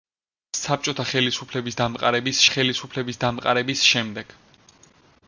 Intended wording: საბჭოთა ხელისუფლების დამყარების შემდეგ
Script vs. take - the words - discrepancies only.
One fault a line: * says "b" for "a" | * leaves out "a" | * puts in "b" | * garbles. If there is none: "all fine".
* puts in "ხელისუფლების დამყარების"